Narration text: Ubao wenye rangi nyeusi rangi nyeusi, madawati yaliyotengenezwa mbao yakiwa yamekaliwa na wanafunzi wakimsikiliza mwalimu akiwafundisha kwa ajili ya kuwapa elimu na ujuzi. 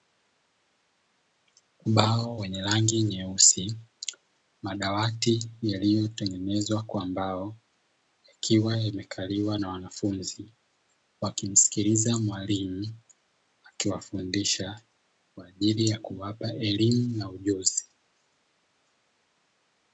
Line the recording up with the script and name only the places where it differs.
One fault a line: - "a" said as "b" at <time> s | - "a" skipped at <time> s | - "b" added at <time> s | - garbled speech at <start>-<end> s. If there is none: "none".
- "rangi nyeusi" skipped at 3.8 s
- "kwa" added at 6.8 s